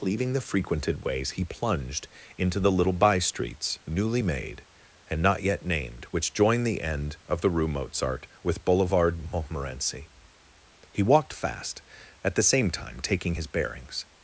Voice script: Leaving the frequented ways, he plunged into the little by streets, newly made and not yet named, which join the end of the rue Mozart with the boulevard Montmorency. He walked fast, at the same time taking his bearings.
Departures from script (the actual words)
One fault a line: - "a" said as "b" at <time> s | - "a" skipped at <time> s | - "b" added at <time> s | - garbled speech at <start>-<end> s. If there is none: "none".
- "the" skipped at 8.6 s